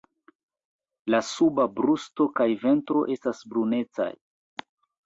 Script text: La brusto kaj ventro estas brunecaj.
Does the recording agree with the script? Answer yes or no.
no